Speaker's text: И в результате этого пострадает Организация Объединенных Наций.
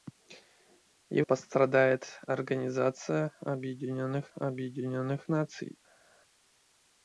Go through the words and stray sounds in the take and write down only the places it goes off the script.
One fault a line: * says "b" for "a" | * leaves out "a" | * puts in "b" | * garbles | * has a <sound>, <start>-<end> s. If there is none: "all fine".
* leaves out "в результате этого"
* puts in "Объединенных"